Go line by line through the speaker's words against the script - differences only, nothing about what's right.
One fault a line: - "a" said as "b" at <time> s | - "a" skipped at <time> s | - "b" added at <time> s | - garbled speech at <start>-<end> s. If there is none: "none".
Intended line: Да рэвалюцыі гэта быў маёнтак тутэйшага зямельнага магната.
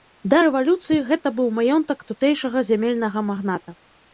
none